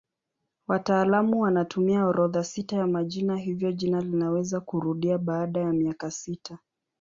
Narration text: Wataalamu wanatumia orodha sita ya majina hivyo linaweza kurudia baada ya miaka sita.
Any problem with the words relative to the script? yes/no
yes